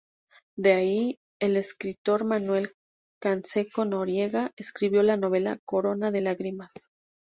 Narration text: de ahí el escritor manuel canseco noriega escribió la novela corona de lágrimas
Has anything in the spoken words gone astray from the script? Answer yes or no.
no